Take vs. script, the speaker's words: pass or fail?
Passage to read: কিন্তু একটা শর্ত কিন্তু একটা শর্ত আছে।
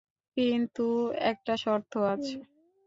fail